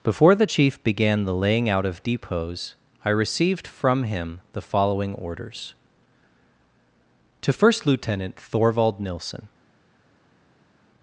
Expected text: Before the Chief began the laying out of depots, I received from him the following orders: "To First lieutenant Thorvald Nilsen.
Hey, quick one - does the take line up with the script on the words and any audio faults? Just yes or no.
yes